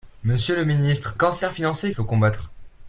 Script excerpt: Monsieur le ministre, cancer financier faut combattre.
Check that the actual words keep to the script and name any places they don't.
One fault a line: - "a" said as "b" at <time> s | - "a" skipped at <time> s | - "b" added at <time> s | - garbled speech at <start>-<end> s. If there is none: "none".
none